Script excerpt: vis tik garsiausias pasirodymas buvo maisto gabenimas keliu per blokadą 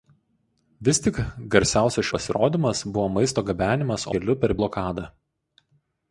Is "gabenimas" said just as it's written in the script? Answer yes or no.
yes